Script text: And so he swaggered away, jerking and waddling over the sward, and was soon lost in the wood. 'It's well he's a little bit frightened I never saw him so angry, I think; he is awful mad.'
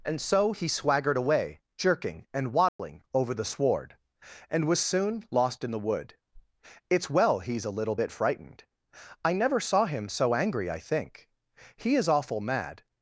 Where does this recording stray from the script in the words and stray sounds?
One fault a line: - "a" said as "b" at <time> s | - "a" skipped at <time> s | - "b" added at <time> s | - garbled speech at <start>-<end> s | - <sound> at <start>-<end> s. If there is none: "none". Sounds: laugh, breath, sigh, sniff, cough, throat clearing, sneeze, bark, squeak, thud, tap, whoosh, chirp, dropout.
- dropout at 2.7-2.8 s